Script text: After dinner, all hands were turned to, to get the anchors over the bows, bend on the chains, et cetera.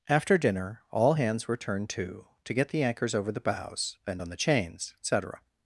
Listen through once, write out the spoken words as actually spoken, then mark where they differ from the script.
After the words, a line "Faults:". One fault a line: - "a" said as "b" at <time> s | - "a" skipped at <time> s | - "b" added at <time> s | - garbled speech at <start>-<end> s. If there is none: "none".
After dinner, all hands were turned to, to get the anchors over the bows, bend on the chains, et cetera.
Faults:
none